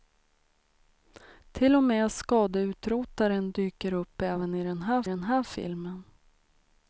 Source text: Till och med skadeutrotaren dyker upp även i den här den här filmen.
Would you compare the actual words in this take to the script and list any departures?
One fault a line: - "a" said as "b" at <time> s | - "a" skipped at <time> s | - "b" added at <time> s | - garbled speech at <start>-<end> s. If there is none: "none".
none